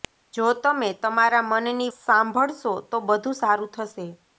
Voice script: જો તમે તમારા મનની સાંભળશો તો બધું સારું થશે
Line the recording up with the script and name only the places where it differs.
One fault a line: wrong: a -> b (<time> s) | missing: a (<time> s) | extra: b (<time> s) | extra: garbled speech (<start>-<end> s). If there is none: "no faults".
no faults